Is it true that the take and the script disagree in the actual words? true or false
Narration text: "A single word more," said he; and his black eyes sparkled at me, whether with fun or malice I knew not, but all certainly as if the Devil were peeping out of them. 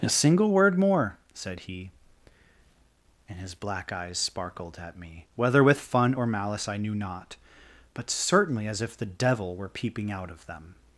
true